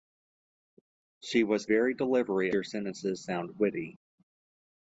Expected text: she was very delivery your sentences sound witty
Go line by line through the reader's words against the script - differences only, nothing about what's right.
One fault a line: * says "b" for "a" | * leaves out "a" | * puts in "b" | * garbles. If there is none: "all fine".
all fine